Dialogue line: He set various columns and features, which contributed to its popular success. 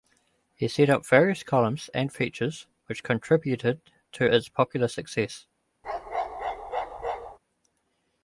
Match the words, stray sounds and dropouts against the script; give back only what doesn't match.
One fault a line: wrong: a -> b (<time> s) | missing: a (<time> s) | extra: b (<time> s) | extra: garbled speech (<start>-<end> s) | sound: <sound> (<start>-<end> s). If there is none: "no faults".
extra: up (0.9 s)
sound: bark (5.8-7.4 s)